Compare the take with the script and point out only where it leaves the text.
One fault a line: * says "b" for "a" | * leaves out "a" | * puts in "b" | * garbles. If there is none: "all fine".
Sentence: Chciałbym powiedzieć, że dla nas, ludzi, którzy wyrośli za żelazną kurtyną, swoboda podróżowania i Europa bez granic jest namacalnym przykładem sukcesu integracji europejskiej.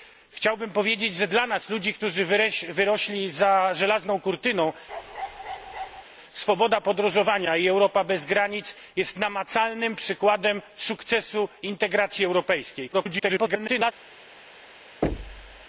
* garbles